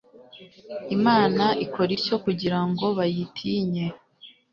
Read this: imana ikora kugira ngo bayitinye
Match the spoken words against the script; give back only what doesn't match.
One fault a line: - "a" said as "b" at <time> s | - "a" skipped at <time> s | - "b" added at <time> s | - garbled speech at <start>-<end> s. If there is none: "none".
- "ityo" added at 2.0 s